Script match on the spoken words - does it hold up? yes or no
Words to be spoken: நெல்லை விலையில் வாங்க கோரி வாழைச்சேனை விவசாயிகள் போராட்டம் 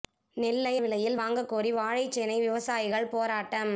yes